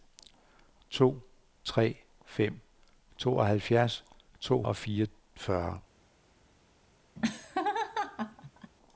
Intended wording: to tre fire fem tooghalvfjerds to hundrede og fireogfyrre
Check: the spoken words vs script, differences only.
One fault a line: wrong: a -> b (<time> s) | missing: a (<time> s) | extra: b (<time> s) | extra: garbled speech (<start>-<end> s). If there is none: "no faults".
missing: fire (1.9 s)
missing: hundrede (4.6 s)